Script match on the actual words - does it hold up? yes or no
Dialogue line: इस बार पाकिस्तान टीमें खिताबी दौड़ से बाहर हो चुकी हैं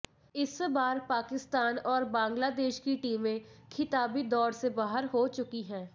no